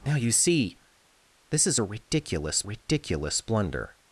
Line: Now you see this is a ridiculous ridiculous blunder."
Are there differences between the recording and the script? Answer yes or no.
no